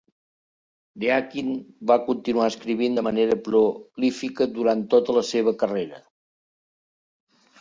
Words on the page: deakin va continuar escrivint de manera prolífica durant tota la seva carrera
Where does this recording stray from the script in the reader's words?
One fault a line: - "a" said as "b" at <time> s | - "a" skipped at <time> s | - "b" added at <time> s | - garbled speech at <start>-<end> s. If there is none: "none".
none